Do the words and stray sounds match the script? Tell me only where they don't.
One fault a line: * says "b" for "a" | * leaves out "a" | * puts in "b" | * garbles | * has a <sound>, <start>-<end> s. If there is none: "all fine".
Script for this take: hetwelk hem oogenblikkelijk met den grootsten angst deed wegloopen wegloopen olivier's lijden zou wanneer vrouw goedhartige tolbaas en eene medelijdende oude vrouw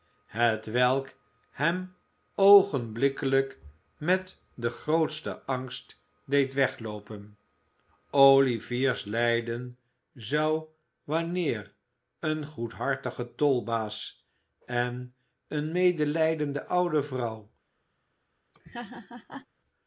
* leaves out "wegloopen"
* says "een" for "vrouw"
* has a laugh, 18.5-19.5 s